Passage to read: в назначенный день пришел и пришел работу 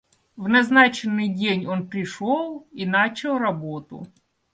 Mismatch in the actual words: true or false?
true